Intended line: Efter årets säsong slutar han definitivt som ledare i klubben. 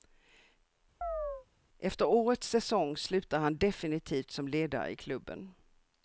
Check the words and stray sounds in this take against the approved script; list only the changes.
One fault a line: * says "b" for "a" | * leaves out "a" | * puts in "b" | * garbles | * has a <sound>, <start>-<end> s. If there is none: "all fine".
* has a chirp, 1.0-1.5 s